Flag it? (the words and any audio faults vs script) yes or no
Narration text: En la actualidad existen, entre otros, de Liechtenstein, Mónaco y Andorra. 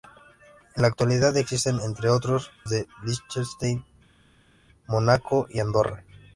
no